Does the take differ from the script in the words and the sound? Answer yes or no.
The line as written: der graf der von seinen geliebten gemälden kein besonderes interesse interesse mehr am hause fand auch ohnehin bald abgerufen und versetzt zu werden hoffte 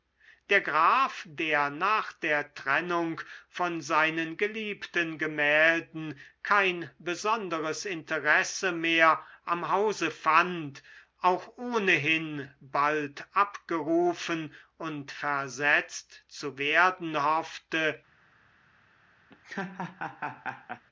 yes